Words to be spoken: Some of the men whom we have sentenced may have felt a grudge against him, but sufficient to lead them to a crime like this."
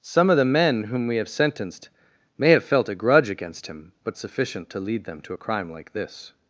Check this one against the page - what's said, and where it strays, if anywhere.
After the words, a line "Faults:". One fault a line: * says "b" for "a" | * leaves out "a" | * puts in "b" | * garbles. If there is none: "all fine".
Some of the men whom we have sentenced may have felt a grudge against him, but sufficient to lead them to a crime like this."
Faults:
all fine